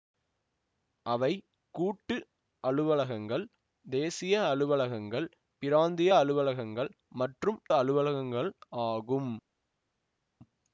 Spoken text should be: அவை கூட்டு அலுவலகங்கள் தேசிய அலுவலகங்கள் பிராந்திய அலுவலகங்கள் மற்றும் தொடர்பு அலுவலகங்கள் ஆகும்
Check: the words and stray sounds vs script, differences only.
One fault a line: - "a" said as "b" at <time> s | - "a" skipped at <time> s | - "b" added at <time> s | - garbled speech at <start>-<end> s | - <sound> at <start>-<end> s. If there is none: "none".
- "தொடர்பு" skipped at 7.6 s